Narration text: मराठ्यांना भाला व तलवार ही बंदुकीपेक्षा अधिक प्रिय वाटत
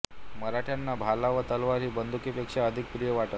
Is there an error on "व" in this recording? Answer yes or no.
no